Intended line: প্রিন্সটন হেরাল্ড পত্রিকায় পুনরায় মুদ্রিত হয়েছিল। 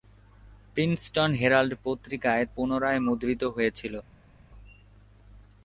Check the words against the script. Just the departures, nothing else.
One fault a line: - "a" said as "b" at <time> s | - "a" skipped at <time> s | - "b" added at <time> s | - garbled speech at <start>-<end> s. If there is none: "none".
none